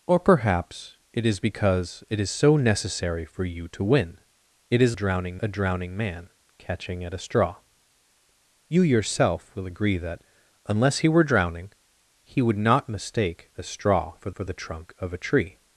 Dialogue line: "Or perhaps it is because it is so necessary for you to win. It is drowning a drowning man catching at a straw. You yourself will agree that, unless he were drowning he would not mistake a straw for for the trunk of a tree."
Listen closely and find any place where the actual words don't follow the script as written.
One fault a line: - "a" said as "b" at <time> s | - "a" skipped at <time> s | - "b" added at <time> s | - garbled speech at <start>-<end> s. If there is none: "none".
none